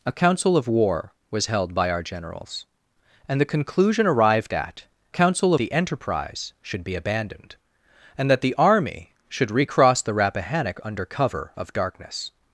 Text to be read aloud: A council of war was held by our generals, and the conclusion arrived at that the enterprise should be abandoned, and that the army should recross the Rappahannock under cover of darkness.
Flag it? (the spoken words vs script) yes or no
yes